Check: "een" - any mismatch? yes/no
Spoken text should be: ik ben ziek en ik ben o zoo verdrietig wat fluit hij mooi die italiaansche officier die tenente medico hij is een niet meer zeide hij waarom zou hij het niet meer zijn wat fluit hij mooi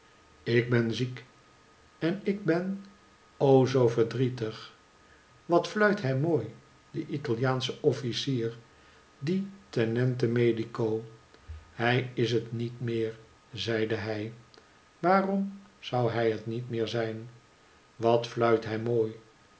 yes